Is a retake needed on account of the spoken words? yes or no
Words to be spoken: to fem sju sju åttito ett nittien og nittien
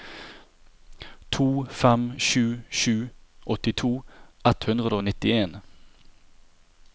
yes